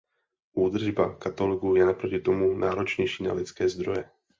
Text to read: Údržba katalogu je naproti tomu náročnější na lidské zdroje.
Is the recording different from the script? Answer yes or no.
no